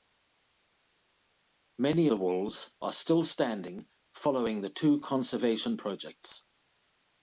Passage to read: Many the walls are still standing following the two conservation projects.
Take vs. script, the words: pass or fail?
pass